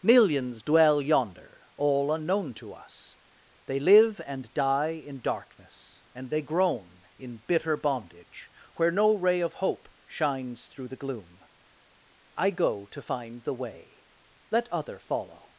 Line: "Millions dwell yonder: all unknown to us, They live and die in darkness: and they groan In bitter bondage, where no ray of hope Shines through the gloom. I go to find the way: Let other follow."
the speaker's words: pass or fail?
pass